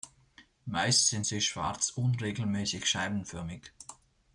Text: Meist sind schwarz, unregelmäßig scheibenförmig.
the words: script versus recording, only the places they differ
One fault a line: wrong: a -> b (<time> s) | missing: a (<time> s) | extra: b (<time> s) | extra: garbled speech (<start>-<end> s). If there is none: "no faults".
extra: sie (1.2 s)